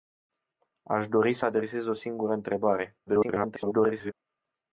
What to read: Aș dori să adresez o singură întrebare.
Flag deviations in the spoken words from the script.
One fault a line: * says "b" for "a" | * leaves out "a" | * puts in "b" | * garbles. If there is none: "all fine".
* garbles